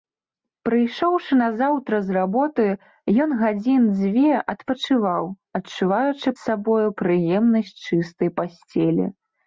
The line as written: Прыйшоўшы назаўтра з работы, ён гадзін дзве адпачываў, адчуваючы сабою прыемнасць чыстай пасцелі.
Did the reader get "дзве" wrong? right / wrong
right